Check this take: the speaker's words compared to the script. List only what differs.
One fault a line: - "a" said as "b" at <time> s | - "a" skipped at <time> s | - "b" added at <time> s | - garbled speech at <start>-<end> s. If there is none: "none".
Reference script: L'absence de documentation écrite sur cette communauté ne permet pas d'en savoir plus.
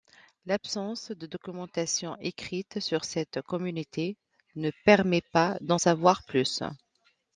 none